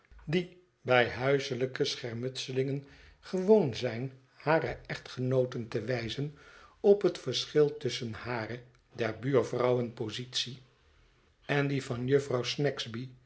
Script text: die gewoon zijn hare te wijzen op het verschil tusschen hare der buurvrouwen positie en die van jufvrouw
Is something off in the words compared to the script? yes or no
yes